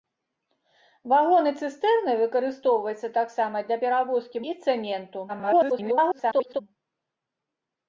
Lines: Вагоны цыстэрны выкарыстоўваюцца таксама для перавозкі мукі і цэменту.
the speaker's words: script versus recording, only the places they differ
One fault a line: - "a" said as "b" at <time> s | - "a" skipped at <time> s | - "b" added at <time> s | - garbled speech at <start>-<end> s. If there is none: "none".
- "мукі" skipped at 4.4 s
- garbled speech at 5.3-6.6 s